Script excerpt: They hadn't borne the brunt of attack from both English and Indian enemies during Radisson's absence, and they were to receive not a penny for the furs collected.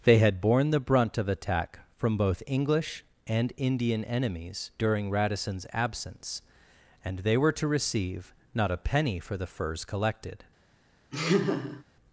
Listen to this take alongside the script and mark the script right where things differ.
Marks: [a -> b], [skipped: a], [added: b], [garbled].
They [hadn't -> had] borne the brunt of attack from both English and Indian enemies during Radisson's absence, and they were to receive not a penny for the furs collected.